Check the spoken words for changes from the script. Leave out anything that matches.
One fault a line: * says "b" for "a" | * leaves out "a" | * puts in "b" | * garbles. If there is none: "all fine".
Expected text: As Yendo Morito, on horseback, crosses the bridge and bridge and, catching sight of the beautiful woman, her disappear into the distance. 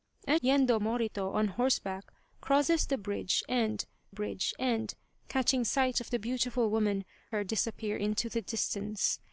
all fine